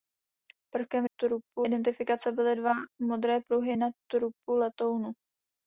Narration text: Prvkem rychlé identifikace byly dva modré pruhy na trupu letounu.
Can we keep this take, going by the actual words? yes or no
no